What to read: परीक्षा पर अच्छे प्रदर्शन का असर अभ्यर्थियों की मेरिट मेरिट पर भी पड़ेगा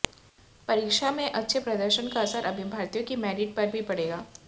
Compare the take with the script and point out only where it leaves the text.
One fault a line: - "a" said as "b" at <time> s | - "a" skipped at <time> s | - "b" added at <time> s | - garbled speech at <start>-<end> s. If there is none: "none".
- "पर" said as "में" at 1.1 s
- "मेरिट" skipped at 3.6 s